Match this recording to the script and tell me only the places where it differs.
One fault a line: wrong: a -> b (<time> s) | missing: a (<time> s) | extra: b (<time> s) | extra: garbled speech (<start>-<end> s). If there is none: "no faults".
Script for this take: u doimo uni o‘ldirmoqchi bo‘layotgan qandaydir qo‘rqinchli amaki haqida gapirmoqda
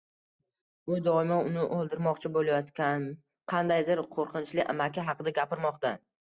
no faults